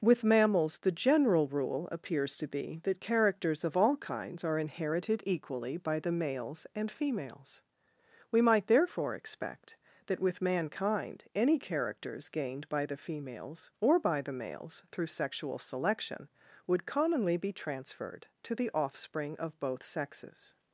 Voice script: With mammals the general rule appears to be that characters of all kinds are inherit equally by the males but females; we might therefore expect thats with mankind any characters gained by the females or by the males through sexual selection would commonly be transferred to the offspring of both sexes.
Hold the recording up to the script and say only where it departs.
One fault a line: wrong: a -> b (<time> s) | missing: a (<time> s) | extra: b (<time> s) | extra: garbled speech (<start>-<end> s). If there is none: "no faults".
wrong: inherit -> inherited (4.6 s)
wrong: but -> and (6.7 s)
wrong: thats -> that (10.1 s)